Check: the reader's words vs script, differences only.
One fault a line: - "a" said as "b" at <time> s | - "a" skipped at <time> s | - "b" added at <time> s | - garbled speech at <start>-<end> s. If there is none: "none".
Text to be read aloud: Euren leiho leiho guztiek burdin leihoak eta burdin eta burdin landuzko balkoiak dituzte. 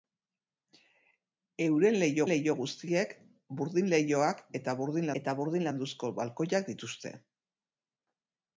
none